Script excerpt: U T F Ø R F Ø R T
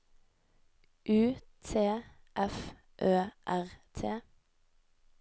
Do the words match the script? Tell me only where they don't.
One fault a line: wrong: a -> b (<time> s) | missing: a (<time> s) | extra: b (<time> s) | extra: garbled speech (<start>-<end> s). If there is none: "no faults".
missing: F Ø R (3.7 s)